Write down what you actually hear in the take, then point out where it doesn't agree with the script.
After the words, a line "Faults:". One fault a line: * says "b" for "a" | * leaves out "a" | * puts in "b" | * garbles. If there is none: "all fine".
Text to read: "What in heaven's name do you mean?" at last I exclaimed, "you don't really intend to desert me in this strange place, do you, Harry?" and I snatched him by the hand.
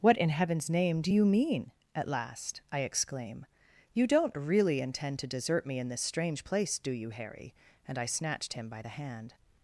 "What in heaven's name do you mean?" at last I exclaim, "you don't really intend to desert me in this strange place, do you, Harry?" and I snatched him by the hand.
Faults:
* says "exclaim" for "exclaimed"